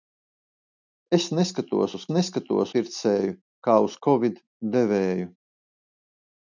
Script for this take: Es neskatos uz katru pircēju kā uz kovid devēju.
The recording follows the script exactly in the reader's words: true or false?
false